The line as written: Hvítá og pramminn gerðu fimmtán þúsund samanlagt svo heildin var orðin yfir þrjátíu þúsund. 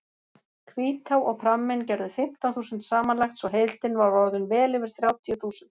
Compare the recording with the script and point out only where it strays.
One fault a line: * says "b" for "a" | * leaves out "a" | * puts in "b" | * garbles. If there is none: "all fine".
* puts in "vel"